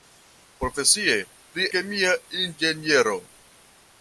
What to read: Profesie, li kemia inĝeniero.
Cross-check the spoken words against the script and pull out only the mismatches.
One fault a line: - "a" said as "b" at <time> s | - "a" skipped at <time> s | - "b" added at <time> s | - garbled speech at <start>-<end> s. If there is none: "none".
none